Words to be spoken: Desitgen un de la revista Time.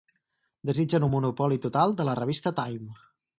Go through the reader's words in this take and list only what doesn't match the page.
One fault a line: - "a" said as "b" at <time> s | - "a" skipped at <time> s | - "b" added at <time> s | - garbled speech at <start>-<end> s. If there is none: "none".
- "monopoli total" added at 1.1 s